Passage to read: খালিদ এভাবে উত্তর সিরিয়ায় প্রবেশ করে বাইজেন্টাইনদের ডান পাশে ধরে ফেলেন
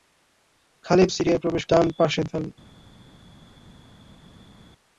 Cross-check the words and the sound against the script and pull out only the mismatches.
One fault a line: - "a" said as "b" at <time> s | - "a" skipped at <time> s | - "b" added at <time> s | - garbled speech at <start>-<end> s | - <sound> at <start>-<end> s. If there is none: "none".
- "এভাবে উত্তর" skipped at 1.1 s
- "করে বাইজেন্টাইনদের" skipped at 1.6 s
- "ধরে" skipped at 2.2 s